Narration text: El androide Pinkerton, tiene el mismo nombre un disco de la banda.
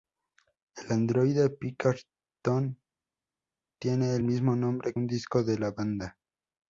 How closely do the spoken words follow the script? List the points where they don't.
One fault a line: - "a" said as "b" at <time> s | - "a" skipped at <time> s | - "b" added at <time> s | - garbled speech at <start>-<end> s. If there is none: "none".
none